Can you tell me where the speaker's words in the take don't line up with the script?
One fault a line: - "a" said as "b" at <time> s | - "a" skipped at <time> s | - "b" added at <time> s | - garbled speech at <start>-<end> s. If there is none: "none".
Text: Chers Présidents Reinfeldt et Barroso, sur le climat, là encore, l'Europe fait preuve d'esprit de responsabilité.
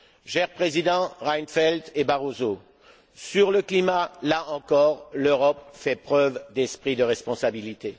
none